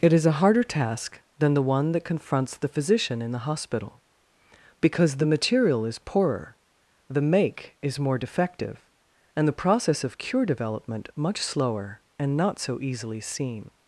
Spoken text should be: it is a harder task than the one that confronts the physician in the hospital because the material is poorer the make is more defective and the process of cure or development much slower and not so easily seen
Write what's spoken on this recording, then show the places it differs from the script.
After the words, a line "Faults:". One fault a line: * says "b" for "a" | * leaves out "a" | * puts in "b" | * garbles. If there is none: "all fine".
it is a harder task than the one that confronts the physician in the hospital because the material is poorer the make is more defective and the process of cure development much slower and not so easily seen
Faults:
* leaves out "or"